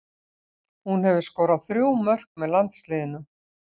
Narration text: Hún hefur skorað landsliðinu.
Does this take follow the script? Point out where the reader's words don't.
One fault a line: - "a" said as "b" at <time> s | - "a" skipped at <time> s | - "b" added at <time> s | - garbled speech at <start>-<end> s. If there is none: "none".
- "þrjú mörk með" added at 1.7 s